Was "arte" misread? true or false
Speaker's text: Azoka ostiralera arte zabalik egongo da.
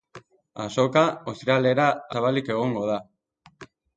true